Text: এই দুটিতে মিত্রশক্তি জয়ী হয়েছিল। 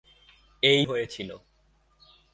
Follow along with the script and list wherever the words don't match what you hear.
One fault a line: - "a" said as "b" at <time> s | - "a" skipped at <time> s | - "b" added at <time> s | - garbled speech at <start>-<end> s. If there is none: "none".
- "দুটিতে মিত্রশক্তি জয়ী" skipped at 0.8 s